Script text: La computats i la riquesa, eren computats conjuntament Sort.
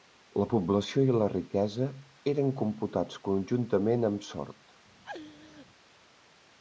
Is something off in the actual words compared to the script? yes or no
yes